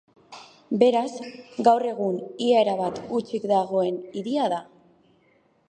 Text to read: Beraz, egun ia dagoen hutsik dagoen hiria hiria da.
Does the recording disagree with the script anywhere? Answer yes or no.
yes